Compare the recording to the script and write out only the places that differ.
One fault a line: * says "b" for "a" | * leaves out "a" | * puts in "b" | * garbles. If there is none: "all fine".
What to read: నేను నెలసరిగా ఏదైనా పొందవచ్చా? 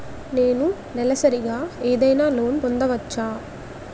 * puts in "లోన్"